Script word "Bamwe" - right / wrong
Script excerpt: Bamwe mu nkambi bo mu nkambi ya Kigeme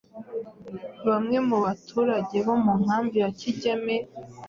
right